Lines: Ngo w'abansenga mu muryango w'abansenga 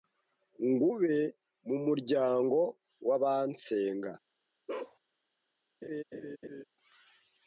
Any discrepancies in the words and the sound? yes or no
yes